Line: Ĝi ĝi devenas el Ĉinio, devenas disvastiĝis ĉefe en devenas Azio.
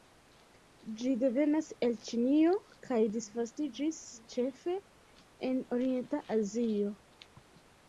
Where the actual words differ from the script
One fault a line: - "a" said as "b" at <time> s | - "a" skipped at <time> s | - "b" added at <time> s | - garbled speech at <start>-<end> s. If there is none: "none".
- "ĝi" skipped at 1.1 s
- "devenas" said as "kaj" at 2.9 s
- "devenas" said as "orienta" at 5.8 s